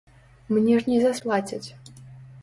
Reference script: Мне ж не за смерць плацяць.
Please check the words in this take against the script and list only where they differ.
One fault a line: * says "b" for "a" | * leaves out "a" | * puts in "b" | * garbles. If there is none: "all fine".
* leaves out "смерць"